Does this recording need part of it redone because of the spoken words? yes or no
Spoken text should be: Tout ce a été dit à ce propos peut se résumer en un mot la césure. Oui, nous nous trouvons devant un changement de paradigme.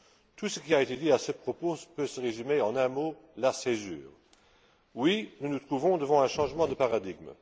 yes